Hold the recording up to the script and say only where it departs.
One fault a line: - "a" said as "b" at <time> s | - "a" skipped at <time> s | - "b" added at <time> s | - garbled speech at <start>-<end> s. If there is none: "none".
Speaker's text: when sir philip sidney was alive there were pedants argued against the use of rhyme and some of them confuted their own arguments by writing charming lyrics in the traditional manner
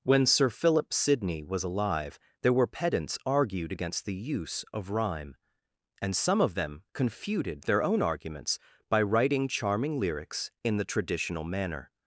none